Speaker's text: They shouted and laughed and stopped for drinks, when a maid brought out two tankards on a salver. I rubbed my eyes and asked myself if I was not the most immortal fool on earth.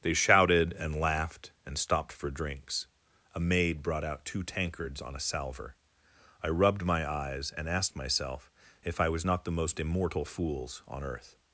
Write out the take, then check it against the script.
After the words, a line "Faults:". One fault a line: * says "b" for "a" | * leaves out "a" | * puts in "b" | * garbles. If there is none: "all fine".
They shouted and laughed and stopped for drinks, a maid brought out two tankards on a salver. I rubbed my eyes and asked myself if I was not the most immortal fools on earth.
Faults:
* leaves out "when"
* says "fools" for "fool"